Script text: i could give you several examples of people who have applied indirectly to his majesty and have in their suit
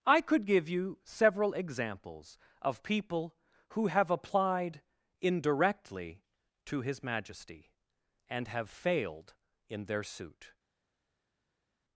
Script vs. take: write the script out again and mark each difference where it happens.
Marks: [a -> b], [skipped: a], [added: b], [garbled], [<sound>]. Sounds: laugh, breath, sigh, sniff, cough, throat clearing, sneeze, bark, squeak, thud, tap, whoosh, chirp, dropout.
i could give you several examples of people who have applied indirectly to his majesty and have [added: failed] in their suit